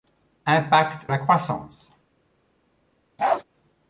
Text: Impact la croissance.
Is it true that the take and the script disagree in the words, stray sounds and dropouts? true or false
true